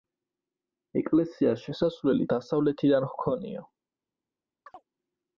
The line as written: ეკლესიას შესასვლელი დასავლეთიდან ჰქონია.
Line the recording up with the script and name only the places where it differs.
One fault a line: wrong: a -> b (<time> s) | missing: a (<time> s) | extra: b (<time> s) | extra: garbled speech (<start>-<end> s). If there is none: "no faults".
no faults